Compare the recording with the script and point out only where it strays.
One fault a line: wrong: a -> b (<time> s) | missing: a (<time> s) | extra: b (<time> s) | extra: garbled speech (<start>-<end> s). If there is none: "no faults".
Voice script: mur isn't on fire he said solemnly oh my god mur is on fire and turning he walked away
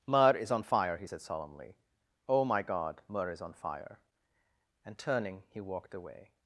wrong: isn't -> is (0.3 s)